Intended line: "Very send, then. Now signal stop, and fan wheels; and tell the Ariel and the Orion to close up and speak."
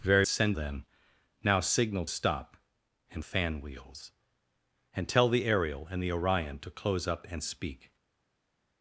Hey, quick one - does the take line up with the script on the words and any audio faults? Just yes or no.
yes